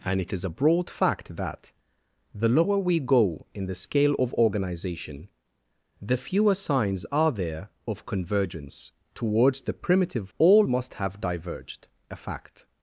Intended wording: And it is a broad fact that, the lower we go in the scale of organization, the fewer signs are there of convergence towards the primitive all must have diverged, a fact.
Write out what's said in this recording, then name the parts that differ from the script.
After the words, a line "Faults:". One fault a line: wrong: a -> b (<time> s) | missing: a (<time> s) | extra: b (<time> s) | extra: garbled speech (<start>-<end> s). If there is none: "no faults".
And it is a broad fact that, the lower we go in the scale of organization, the fewer signs are there of convergence towards the primitive all must have diverged, a fact.
Faults:
no faults